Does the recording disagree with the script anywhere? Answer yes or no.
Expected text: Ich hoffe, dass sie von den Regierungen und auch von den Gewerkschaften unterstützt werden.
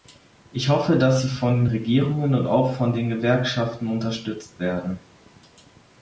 no